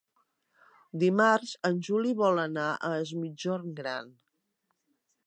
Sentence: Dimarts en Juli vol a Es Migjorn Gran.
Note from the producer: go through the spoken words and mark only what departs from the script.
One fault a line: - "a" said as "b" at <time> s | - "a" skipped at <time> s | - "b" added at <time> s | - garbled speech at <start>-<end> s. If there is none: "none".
- "anar" added at 2.5 s